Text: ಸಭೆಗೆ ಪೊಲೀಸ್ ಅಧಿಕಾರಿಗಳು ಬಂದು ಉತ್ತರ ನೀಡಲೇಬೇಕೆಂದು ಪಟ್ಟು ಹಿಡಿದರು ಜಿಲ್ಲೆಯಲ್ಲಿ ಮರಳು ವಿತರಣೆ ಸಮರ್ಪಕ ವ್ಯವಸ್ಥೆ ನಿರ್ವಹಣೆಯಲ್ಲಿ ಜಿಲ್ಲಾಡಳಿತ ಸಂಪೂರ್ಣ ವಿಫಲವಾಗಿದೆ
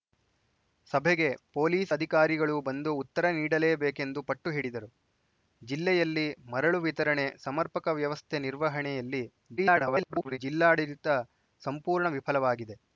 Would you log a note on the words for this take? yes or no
yes